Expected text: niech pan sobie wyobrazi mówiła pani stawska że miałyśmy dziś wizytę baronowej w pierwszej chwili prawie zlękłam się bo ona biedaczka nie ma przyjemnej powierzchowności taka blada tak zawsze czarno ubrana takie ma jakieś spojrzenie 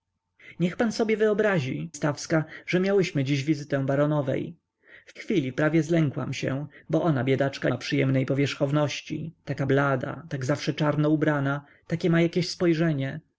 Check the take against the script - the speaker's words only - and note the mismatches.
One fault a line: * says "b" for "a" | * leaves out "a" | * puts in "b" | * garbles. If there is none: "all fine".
* leaves out "mówiła pani"
* leaves out "pierwszej"
* leaves out "nie"